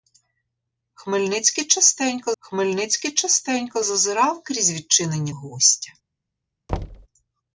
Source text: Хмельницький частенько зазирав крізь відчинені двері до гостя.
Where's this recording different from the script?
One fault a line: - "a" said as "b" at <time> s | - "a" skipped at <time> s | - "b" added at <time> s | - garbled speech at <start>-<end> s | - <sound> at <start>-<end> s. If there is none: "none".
- "хмельницький частенько" added at 2.4 s
- "двері до" skipped at 5.3 s
- thud at 6.7-7.1 s